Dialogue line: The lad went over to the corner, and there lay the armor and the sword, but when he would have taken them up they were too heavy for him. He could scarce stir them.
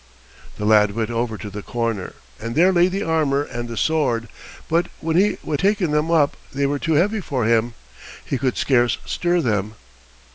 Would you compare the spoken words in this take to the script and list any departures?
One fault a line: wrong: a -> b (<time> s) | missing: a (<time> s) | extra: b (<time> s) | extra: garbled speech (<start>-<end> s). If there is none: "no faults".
missing: have (5.6 s)